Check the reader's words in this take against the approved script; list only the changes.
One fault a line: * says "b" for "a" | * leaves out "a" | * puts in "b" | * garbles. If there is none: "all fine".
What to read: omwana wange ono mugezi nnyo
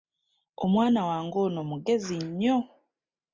all fine